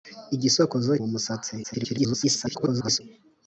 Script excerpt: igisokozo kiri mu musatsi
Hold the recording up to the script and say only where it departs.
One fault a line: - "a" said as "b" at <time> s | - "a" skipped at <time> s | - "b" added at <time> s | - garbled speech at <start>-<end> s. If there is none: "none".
- "kiri" skipped at 0.9 s
- garbled speech at 1.6-3.0 s